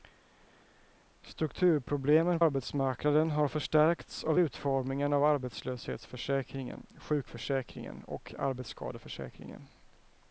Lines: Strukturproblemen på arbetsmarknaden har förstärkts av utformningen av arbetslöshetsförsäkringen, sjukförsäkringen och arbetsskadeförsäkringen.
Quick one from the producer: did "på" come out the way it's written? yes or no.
no